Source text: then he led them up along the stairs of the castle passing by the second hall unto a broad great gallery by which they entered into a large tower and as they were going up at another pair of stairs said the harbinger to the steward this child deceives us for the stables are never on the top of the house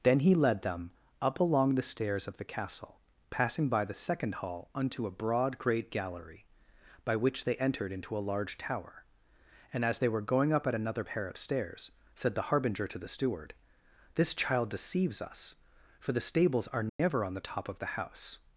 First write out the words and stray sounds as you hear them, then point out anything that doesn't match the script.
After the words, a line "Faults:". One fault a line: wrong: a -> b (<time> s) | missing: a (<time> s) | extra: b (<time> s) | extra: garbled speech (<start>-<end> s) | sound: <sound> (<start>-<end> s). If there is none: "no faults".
then he led them up along the stairs of the castle passing by the second hall unto a broad great gallery by which they entered into a large tower and as they were going up at another pair of stairs said the harbinger to the steward this child deceives us for the stables are never on the top of the house
Faults:
sound: dropout (16.9-17.0 s)